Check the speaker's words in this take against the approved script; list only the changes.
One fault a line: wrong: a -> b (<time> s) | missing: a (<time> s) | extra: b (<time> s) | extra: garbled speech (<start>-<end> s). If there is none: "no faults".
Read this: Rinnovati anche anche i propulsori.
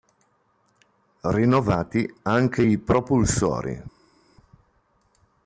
missing: anche (2.6 s)